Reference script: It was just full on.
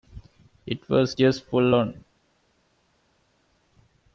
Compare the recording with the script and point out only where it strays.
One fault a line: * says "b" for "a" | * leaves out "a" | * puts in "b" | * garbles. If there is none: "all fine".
all fine